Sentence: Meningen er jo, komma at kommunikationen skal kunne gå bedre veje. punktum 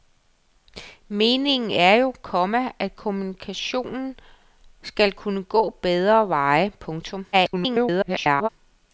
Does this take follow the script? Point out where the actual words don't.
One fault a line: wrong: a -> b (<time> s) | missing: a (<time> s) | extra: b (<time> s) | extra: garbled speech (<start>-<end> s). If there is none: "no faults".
extra: garbled speech (7.3-8.5 s)